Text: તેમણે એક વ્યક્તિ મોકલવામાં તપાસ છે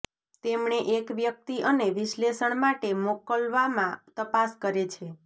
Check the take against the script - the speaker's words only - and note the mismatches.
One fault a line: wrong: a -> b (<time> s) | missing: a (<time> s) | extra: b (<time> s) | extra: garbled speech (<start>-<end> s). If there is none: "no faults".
extra: અને વિશ્લેષણ માટે (1.6 s)
extra: કરે (4.6 s)